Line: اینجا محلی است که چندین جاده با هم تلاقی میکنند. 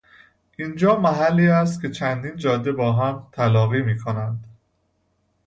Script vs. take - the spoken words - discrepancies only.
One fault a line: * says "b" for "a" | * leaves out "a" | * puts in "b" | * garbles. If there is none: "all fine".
all fine